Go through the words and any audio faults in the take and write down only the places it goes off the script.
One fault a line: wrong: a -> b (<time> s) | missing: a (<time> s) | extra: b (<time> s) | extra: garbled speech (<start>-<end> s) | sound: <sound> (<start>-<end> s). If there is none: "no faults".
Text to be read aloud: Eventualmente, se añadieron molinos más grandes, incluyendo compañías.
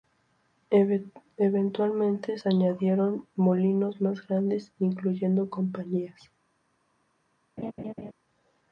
sound: laugh (7.6-8.1 s)